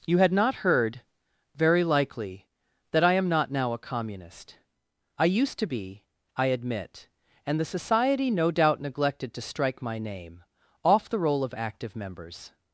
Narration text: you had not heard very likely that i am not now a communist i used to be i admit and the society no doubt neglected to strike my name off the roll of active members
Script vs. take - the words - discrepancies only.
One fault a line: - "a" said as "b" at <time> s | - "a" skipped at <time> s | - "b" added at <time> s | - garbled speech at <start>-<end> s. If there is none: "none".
none